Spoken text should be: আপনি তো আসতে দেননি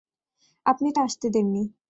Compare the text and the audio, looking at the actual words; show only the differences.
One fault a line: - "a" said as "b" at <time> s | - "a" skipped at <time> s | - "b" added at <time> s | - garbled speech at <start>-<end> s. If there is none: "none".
none